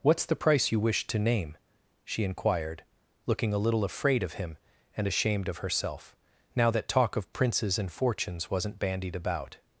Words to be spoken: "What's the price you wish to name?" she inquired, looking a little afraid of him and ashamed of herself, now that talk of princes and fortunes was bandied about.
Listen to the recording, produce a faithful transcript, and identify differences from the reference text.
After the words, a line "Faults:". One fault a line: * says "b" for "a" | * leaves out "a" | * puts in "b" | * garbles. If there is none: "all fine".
"What's the price you wish to name?" she inquired, looking a little afraid of him and ashamed of herself, now that talk of princes and fortunes wasn't bandied about.
Faults:
* says "wasn't" for "was"